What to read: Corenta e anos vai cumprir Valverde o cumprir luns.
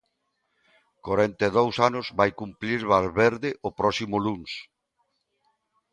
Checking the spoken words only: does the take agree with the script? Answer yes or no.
no